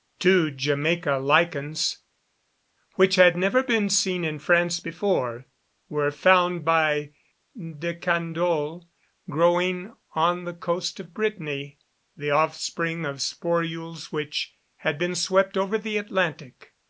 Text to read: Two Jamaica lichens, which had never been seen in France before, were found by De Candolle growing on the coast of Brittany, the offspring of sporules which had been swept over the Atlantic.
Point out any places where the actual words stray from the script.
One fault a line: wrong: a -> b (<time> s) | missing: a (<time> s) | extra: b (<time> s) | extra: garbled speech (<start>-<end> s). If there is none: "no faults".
no faults